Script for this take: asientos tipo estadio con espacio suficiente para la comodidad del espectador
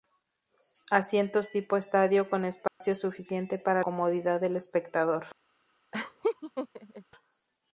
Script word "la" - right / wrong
wrong